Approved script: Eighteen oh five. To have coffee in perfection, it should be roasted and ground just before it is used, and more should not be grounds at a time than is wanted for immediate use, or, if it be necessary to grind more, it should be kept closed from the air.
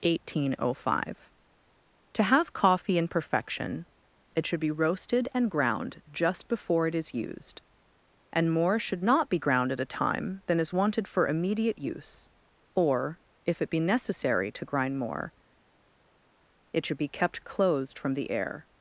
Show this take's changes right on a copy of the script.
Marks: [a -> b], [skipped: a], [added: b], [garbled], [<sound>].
Eighteen oh five. To have coffee in perfection, it should be roasted and ground just before it is used, and more should not be [grounds -> ground] at a time than is wanted for immediate use, or, if it be necessary to grind more, it should be kept closed from the air.